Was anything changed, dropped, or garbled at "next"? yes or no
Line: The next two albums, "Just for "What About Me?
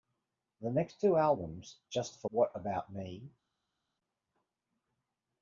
no